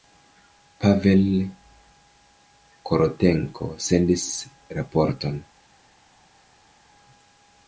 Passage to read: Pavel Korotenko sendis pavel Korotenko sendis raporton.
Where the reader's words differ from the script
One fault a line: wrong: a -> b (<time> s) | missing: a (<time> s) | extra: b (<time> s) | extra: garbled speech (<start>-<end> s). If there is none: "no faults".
missing: pavel Korotenko sendis (4.3 s)